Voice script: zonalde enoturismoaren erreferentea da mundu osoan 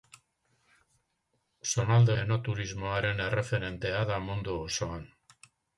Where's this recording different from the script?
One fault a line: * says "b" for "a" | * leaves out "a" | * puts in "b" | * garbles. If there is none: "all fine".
all fine